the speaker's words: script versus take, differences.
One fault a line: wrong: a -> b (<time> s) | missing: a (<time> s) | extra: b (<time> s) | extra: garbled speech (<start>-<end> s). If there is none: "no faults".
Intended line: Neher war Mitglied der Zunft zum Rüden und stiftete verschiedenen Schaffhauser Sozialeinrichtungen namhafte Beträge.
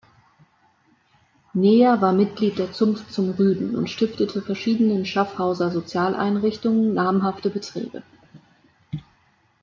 no faults